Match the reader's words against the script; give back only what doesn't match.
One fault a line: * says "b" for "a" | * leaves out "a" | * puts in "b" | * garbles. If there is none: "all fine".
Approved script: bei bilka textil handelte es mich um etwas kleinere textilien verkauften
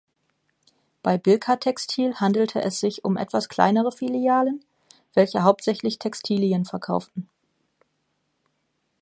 * says "sich" for "mich"
* puts in "filialen welche hauptsächlich"